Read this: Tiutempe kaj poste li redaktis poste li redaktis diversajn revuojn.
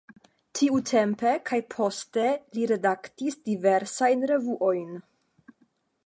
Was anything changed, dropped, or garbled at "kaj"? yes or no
no